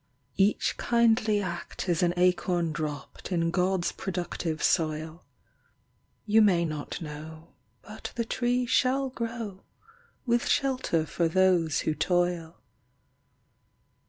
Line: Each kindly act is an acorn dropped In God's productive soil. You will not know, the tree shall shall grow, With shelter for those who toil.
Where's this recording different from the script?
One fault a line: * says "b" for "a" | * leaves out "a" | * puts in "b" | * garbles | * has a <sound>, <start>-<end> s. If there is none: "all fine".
* says "may" for "will"
* puts in "but"
* leaves out "shall"